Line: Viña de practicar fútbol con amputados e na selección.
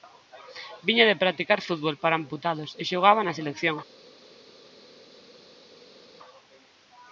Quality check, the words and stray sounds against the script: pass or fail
fail